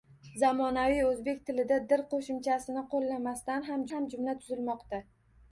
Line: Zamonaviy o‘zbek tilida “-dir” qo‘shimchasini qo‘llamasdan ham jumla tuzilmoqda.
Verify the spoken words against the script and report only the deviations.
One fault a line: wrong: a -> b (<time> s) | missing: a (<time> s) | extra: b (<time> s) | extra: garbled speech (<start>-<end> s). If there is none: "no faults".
extra: ham (3.9 s)